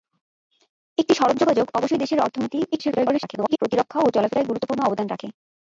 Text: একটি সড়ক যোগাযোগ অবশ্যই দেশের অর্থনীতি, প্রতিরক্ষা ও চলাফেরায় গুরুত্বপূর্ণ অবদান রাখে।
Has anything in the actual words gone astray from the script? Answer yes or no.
yes